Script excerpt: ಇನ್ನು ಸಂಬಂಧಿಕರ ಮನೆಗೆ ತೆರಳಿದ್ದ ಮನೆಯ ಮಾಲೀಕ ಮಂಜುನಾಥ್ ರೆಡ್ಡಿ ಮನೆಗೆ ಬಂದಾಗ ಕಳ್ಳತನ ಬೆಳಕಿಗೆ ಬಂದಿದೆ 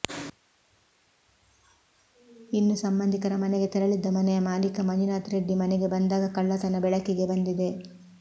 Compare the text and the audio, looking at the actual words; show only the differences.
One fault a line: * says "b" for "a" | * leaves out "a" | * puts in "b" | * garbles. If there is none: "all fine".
all fine